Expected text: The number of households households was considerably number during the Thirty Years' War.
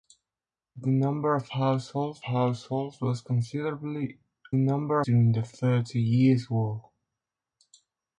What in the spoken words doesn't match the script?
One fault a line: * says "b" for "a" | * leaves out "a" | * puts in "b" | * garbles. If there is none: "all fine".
all fine